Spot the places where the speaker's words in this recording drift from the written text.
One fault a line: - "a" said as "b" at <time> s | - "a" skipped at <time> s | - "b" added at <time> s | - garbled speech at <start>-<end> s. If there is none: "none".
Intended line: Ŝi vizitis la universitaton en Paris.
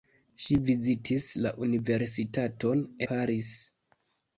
- "en" skipped at 2.8 s